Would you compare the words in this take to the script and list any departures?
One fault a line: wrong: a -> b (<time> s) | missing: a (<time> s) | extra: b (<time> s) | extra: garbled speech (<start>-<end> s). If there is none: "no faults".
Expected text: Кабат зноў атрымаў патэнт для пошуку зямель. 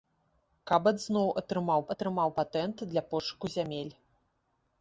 extra: атрымаў (1.9 s)